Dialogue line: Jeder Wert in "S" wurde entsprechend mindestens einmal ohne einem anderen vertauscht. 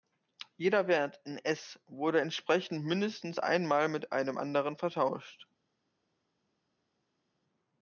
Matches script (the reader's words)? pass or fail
fail